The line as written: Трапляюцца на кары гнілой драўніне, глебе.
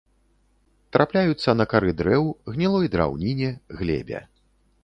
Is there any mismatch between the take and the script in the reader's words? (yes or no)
yes